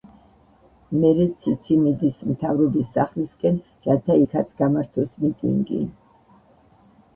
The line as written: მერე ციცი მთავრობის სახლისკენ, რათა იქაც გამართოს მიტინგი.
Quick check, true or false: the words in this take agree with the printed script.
false